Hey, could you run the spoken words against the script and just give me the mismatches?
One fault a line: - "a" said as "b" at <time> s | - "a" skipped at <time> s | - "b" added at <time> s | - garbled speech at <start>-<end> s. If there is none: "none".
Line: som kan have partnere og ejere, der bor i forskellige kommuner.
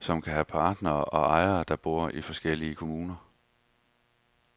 none